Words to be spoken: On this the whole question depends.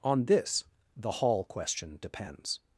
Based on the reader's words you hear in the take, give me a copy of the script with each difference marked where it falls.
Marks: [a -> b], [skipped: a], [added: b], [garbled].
On this the [whole -> hall] question depends.